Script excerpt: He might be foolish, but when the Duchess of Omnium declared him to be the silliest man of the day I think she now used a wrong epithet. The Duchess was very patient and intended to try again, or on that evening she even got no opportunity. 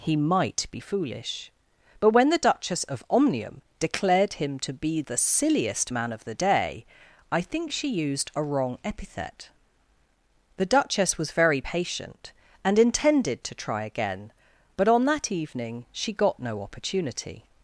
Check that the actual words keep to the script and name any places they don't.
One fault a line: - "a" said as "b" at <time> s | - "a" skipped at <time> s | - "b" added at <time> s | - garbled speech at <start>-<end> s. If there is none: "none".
- "now" skipped at 7.9 s
- "or" said as "but" at 14.7 s
- "even" skipped at 16.1 s